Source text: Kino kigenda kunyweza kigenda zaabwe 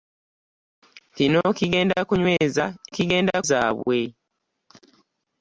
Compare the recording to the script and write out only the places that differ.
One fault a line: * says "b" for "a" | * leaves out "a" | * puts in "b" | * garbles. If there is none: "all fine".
all fine